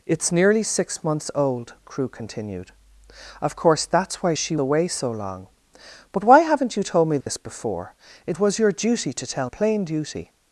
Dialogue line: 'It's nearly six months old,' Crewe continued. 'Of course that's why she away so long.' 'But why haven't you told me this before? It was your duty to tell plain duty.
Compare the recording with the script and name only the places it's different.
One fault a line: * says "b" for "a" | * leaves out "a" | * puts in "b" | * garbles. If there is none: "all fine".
all fine